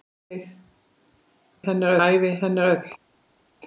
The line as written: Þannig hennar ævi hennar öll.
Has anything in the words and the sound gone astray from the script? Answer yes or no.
no